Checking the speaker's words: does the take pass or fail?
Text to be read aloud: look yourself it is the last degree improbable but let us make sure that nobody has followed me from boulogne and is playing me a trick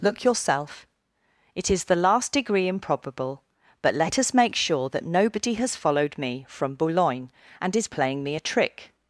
pass